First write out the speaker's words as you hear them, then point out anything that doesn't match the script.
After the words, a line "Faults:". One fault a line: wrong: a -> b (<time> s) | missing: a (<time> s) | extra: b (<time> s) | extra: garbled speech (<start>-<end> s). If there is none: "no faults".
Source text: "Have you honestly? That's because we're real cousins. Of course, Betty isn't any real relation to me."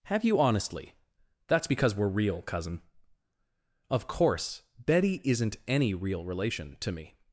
"Have you honestly? That's because we're real cousin. Of course, Betty isn't any real relation to me."
Faults:
wrong: cousins -> cousin (2.4 s)